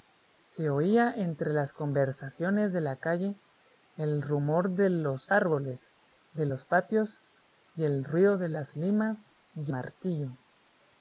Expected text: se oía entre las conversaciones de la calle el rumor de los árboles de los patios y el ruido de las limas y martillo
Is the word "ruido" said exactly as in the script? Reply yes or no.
yes